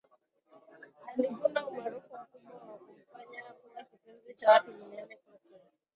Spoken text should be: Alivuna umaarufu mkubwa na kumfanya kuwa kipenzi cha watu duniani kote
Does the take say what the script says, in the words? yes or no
yes